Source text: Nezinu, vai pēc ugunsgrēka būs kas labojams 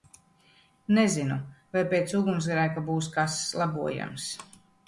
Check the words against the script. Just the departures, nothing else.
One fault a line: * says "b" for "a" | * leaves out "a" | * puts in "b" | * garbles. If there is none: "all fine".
all fine